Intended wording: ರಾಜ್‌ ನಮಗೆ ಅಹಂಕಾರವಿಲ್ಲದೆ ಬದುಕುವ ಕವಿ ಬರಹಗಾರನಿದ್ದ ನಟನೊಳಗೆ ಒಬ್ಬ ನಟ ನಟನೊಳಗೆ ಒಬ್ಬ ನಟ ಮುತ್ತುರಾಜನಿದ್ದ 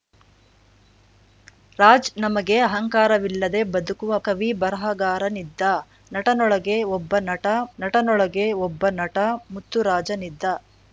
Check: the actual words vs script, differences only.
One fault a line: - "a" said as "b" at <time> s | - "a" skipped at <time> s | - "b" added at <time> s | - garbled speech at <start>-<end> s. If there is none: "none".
none